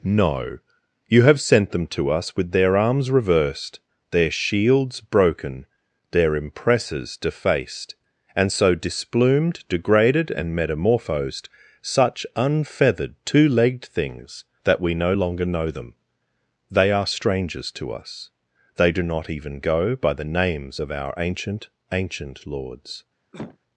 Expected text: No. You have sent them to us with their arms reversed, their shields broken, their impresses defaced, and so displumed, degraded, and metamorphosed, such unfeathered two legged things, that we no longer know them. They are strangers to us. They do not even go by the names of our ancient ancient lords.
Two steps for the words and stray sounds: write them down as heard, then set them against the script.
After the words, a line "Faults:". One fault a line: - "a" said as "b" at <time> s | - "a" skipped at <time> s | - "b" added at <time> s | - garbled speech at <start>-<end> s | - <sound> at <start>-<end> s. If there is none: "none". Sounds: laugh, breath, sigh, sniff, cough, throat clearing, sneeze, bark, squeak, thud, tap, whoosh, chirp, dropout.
No. You have sent them to us with their arms reversed, their shields broken, their impresses defaced, and so displumed, degraded, and metamorphosed, such unfeathered two legged things, that we no longer know them. They are strangers to us. They do not even go by the names of our ancient ancient lords.
Faults:
- cough at 23.3-23.6 s